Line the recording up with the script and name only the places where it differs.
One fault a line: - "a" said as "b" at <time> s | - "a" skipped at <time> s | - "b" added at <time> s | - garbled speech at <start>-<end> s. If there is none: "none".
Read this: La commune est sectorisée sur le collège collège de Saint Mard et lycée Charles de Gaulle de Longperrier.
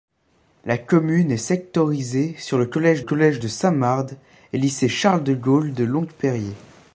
none